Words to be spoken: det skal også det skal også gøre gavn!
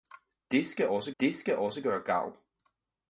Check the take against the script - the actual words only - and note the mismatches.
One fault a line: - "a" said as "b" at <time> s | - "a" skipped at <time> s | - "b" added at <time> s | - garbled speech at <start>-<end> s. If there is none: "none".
none